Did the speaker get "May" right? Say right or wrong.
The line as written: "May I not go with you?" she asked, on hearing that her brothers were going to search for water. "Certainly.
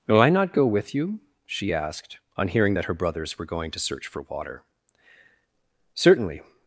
wrong